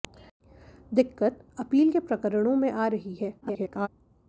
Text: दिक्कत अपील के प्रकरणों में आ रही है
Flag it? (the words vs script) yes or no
yes